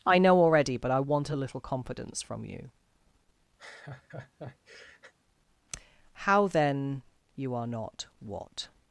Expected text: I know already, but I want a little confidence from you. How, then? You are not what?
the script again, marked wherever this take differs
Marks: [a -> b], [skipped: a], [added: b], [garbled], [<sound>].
I know already, but I want a little confidence from you. [laugh] How, then? You are not what?